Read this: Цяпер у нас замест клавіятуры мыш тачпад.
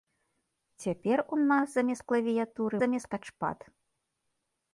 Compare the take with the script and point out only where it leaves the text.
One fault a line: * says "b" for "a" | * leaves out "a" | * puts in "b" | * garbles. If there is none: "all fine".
* says "замест" for "мыш"